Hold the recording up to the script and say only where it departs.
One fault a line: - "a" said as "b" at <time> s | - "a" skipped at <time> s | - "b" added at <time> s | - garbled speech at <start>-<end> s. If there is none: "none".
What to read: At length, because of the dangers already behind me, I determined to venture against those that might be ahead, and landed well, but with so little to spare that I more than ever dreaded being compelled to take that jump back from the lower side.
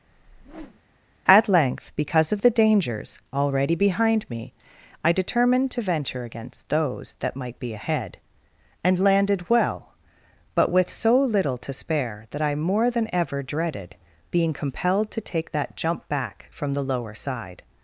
none